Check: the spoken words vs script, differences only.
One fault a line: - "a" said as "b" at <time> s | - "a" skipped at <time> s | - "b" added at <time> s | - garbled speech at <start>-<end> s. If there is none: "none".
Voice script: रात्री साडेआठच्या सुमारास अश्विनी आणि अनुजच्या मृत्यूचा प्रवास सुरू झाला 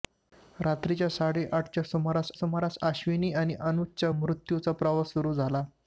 - "सुमारास" added at 2.3 s